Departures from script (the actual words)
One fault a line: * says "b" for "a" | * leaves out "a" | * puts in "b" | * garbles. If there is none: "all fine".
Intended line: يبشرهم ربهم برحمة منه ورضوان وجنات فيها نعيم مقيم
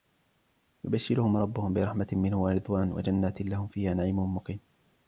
* puts in "لهم"